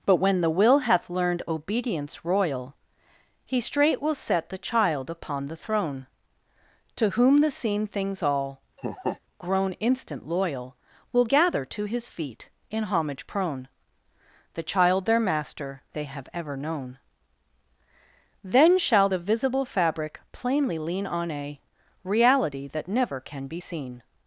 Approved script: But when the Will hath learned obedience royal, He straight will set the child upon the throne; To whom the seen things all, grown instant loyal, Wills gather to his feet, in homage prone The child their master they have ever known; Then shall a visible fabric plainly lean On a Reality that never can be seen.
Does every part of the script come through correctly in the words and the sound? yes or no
no